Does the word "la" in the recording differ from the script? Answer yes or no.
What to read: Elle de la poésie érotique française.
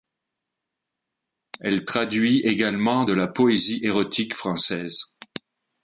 no